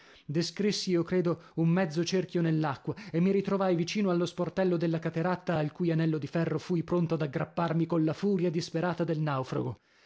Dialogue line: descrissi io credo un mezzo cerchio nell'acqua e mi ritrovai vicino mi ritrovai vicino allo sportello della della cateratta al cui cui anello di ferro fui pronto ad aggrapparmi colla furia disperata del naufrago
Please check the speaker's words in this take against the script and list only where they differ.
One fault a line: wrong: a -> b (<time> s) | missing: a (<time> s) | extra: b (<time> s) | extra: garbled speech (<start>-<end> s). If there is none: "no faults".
missing: mi ritrovai vicino (4.1 s)
missing: della (5.0 s)
missing: cui (5.9 s)